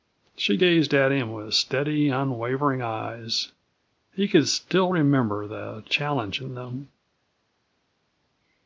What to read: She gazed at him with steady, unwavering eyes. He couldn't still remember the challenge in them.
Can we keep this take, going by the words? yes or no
no